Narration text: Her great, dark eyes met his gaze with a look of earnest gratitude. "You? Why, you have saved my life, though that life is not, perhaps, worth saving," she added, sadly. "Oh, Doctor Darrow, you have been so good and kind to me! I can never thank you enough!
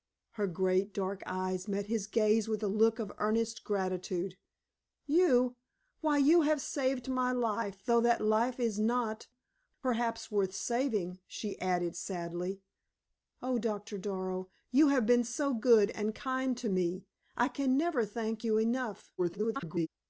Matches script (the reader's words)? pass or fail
fail